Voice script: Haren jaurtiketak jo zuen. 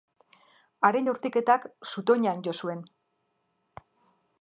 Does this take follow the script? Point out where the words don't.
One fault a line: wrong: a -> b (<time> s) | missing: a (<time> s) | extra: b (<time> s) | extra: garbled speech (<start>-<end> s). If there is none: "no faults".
extra: zutoinan (1.9 s)